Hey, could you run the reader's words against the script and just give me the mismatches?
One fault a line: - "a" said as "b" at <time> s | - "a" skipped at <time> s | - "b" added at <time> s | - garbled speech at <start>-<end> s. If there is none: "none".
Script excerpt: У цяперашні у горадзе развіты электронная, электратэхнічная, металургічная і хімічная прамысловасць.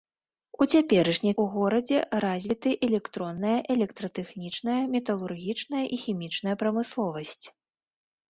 none